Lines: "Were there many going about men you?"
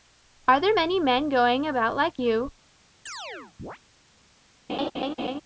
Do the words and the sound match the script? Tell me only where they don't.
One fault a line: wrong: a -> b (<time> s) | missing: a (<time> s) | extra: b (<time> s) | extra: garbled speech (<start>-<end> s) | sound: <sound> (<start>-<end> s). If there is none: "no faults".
wrong: Were -> Are (0.5 s)
extra: men (1.0 s)
wrong: men -> like (2.0 s)
sound: chirp (3.1-3.8 s)
sound: laugh (4.7-5.4 s)